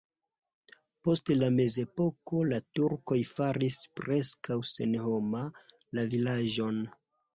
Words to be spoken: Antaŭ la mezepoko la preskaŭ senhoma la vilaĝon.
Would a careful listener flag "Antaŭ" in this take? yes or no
yes